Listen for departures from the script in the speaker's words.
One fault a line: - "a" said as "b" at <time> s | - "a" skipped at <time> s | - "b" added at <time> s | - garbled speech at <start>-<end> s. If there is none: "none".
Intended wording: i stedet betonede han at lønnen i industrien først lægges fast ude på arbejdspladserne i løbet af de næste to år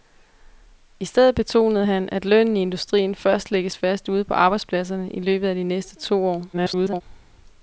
- garbled speech at 6.5-7.0 s